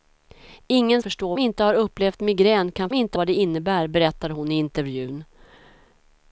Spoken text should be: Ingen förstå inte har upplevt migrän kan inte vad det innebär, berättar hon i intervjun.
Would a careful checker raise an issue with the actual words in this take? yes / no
no